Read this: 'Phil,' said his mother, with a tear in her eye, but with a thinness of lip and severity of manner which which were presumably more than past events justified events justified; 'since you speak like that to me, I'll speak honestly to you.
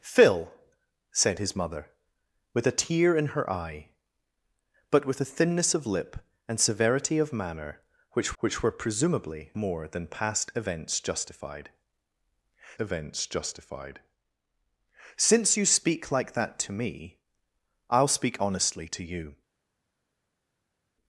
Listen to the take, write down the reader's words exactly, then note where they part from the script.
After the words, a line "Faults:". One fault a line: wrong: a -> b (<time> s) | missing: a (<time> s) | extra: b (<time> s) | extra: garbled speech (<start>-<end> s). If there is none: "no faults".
'Phil,' said his mother, with a tear in her eye, but with a thinness of lip and severity of manner which which were presumably more than past events justified events justified; 'since you speak like that to me, I'll speak honestly to you.
Faults:
no faults